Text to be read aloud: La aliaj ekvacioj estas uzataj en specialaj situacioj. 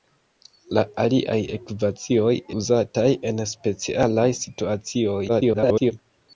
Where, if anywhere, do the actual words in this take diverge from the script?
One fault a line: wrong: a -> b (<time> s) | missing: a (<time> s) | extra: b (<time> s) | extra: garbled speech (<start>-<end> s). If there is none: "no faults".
missing: estas (2.3 s)
extra: garbled speech (5.3-5.9 s)